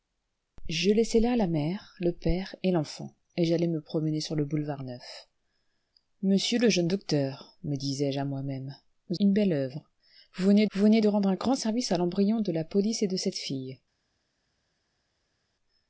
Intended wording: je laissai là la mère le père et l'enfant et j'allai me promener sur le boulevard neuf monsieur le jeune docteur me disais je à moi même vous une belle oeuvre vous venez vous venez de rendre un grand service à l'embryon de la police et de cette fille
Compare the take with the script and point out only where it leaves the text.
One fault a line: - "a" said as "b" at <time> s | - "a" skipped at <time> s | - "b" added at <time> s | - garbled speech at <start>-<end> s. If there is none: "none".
none